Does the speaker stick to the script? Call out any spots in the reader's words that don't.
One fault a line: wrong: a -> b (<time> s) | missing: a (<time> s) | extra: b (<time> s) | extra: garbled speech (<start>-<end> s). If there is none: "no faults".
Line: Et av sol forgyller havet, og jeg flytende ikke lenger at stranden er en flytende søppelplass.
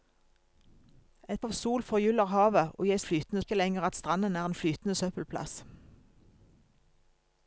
no faults